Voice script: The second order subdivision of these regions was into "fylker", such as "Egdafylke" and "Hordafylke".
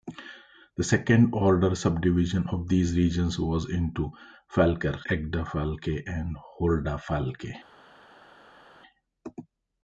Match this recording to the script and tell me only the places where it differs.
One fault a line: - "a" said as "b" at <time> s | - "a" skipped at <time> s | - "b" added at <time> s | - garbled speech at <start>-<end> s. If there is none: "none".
- "such as" skipped at 5.0 s